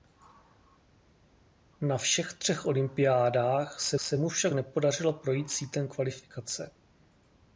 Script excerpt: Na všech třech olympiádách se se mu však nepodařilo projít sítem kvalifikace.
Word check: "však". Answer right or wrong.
right